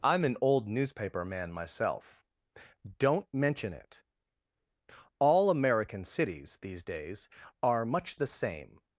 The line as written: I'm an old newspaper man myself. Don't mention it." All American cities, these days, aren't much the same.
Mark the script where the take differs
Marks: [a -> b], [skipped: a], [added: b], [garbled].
I'm an old newspaper man myself. Don't mention it." All American cities, these days, [aren't -> are] much the same.